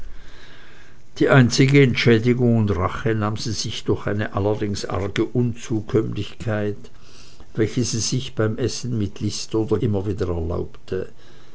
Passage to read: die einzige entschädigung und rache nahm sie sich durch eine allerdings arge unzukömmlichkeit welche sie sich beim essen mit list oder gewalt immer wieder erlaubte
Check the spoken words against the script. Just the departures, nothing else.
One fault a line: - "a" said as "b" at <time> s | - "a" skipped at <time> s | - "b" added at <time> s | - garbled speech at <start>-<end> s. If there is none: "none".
- "gewalt" skipped at 9.8 s